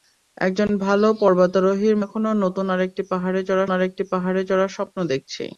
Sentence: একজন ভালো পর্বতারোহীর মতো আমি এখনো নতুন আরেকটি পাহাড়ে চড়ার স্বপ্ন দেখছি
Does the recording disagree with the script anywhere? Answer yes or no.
yes